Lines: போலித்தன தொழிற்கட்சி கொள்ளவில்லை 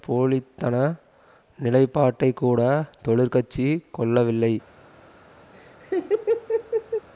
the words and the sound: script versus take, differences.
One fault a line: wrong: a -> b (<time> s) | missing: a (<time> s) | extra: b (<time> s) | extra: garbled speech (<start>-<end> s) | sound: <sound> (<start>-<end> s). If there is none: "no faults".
extra: நிலைப்பாட்டைக்கூட (1.6 s)
sound: laugh (5.5-7.1 s)